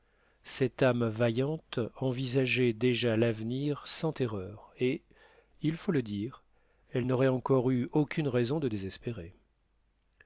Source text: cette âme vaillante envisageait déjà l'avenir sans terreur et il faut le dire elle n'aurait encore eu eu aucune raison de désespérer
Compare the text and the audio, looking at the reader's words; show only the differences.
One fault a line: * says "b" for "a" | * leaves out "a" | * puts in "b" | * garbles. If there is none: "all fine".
* leaves out "eu"